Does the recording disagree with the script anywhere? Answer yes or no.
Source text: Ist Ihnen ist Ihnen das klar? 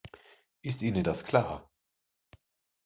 yes